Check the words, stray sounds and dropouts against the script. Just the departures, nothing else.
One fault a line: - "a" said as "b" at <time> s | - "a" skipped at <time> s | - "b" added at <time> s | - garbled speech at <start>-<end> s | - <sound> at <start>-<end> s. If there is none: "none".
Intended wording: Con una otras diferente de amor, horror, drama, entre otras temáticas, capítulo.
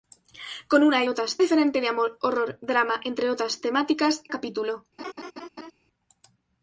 - laugh at 5.0-5.7 s